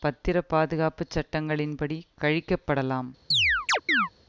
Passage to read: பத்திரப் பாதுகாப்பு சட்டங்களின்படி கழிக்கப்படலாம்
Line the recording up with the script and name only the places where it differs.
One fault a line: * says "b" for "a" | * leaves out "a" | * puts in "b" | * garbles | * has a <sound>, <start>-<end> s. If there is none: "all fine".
* has a chirp, 3.3-4.1 s